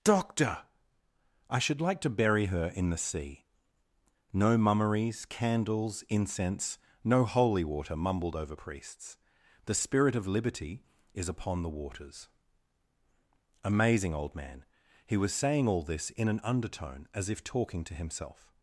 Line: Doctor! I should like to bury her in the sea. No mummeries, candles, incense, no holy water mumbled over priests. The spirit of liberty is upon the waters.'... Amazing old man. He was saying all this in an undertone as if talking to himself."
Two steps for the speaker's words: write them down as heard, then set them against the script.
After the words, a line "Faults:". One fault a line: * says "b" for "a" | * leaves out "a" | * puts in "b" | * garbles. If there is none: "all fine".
Doctor! I should like to bury her in the sea. No mummeries, candles, incense, no holy water mumbled over priests. The spirit of liberty is upon the waters.'... Amazing old man. He was saying all this in an undertone as if talking to himself."
Faults:
all fine